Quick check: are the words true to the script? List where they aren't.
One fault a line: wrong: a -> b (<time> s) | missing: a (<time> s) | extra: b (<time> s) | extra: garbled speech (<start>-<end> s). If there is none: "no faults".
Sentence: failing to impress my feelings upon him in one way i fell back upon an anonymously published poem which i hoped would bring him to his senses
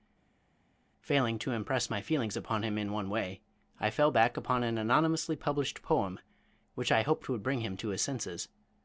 no faults